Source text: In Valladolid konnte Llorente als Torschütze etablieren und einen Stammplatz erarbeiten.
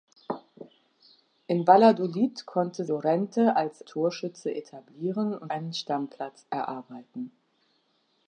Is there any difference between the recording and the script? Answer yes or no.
no